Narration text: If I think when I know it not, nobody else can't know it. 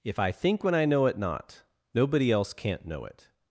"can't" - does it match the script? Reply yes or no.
yes